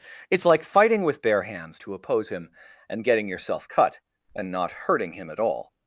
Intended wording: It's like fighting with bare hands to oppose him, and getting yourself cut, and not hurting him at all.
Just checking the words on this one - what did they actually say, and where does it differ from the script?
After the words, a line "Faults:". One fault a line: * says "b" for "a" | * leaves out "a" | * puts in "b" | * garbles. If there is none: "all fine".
It's like fighting with bare hands to oppose him, and getting yourself cut, and not hurting him at all.
Faults:
all fine